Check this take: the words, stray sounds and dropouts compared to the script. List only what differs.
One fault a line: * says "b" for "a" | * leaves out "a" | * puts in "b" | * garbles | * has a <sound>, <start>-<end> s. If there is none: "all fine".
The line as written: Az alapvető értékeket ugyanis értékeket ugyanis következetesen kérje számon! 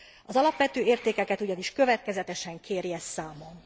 * leaves out "értékeket ugyanis"